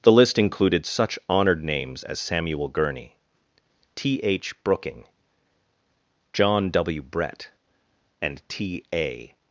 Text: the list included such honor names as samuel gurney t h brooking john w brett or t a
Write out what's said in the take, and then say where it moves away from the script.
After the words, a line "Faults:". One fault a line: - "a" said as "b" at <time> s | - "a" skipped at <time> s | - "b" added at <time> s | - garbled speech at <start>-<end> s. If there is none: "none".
the list included such honored names as samuel gurney t h brooking john w brett and t a
Faults:
- "honor" said as "honored" at 1.3 s
- "or" said as "and" at 8.2 s